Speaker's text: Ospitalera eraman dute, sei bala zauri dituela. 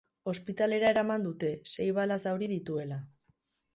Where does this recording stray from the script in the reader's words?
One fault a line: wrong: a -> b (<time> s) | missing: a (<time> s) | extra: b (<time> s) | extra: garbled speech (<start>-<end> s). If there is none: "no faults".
no faults